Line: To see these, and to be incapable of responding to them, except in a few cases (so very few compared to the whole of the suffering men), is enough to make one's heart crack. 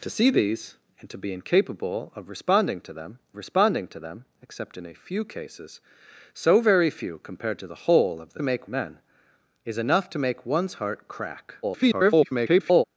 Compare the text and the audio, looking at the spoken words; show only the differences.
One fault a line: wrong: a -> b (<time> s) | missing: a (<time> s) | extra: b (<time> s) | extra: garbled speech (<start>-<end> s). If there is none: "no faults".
extra: responding to them (3.3 s)
wrong: suffering -> make (8.4 s)
extra: garbled speech (11.6-12.8 s)